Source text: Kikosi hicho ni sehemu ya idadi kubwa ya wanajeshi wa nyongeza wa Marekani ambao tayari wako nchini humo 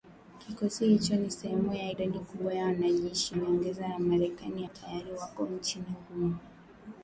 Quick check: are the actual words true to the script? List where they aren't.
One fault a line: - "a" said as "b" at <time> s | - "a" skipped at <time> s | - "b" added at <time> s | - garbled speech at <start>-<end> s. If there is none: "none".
- "wa" skipped at 3.4 s
- "ambao" skipped at 4.6 s